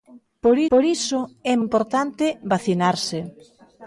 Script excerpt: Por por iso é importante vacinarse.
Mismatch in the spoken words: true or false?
false